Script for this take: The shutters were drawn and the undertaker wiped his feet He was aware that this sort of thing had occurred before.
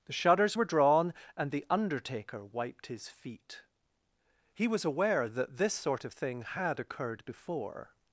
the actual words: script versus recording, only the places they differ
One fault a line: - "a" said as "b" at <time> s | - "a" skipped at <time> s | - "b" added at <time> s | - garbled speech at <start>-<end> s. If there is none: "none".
none